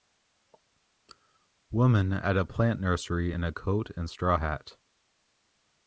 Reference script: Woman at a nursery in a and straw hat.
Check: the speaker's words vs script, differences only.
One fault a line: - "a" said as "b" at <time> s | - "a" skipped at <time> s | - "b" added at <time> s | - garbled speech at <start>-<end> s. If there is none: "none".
- "plant" added at 2.4 s
- "coat" added at 3.5 s